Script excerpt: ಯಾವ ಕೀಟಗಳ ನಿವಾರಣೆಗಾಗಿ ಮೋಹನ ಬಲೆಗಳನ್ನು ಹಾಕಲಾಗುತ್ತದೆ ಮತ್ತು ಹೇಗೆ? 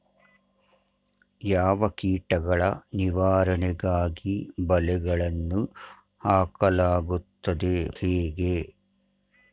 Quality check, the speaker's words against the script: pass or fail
fail